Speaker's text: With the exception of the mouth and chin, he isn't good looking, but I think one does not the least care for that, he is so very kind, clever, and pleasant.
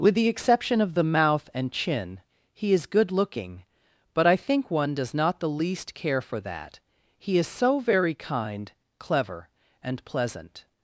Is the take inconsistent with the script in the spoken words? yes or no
yes